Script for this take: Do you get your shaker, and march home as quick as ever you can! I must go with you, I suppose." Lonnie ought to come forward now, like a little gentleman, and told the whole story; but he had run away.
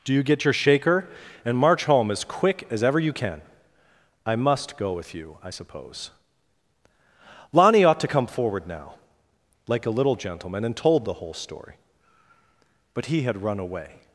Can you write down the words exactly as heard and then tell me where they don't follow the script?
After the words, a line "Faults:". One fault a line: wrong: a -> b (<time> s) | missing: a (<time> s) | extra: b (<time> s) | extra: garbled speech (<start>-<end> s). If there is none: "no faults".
Do you get your shaker, and march home as quick as ever you can! I must go with you, I suppose." Lonnie ought to come forward now, like a little gentleman, and told the whole story; but he had run away.
Faults:
no faults